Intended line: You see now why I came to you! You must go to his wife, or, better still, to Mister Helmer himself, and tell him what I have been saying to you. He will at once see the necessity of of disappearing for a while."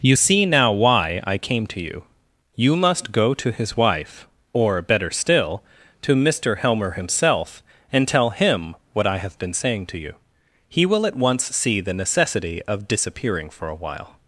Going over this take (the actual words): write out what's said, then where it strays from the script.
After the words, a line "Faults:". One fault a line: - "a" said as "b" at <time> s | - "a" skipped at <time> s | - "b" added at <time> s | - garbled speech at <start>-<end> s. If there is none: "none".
You see now why I came to you! You must go to his wife, or, better still, to Mister Helmer himself, and tell him what I have been saying to you. He will at once see the necessity of disappearing for a while."
Faults:
- "of" skipped at 12.9 s